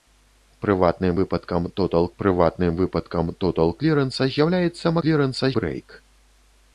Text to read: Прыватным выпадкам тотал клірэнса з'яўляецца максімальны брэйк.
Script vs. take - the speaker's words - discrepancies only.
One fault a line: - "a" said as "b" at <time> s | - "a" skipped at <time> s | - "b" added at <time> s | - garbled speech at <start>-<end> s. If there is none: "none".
- "прыватным выпадкам тотал" added at 2.2 s
- "максімальны" said as "клірэнса" at 5.1 s